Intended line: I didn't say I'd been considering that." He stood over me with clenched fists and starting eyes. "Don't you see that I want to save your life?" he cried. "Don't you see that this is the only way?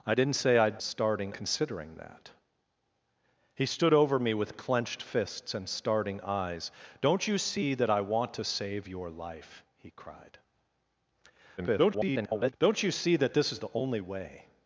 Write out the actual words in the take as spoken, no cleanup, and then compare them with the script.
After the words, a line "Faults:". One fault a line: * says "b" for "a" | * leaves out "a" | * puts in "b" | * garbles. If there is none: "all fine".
I didn't say I'd starting considering that." He stood over me with clenched fists and starting eyes. "Don't you see that I want to save your life?" he cried. [garbled] "Don't you see that this is the only way?
Faults:
* says "starting" for "been"
* garbles